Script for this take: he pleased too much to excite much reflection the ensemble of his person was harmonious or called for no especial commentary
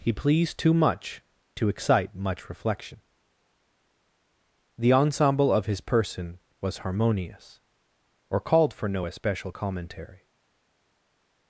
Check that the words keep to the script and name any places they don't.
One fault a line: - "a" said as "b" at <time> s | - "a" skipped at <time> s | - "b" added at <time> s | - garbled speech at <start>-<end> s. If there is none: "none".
none